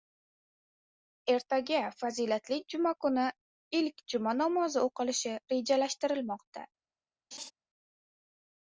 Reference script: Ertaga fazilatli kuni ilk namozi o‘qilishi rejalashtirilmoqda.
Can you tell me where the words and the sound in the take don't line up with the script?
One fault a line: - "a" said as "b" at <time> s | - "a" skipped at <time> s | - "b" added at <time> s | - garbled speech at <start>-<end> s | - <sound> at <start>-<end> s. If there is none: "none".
- "juma" added at 2.8 s
- "juma" added at 4.2 s
- laugh at 7.3-7.5 s